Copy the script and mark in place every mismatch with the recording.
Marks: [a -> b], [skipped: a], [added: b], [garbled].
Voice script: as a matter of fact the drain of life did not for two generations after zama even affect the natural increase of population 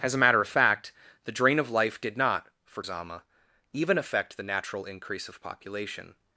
as a matter of fact the drain of life did not for [skipped: two generations after] zama even affect the natural increase of population